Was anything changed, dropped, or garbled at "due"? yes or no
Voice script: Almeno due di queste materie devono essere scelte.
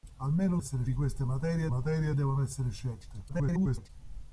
yes